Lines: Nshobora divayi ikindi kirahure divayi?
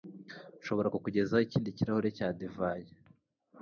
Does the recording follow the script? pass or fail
fail